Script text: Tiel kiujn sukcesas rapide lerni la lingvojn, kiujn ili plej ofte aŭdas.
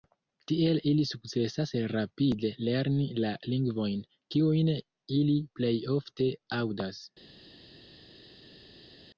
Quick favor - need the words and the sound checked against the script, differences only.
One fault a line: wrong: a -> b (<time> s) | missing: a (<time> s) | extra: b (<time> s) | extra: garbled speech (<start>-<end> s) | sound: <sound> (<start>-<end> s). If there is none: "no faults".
wrong: kiujn -> ili (0.9 s)